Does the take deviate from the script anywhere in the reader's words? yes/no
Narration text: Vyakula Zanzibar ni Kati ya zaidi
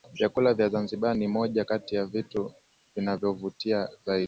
yes